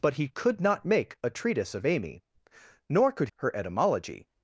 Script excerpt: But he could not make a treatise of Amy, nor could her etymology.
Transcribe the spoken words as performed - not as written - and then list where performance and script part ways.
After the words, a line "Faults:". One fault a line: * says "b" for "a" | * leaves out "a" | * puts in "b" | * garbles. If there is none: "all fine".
But he could not make a treatise of Amy, nor could her etymology.
Faults:
all fine